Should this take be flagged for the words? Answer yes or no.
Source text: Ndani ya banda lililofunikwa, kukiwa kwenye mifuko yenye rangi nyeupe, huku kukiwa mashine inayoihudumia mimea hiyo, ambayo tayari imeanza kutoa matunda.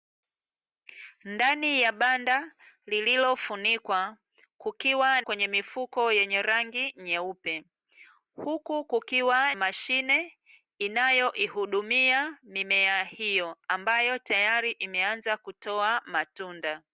no